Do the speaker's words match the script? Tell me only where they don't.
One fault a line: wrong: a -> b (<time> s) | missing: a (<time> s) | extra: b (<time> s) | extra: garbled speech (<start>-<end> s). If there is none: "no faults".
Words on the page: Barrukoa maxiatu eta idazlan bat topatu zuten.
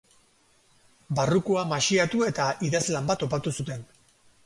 no faults